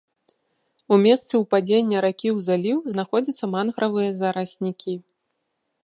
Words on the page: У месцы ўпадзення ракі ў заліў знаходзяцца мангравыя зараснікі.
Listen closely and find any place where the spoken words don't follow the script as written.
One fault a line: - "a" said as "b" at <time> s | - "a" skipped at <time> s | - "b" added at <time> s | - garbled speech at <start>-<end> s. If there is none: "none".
none